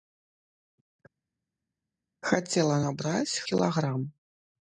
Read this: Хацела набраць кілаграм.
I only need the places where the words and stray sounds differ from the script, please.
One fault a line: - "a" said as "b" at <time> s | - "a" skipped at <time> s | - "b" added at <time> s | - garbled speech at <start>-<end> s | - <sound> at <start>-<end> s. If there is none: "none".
none